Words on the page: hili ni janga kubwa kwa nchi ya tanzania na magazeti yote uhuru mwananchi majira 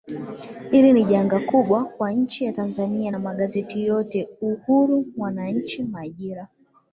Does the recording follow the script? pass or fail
pass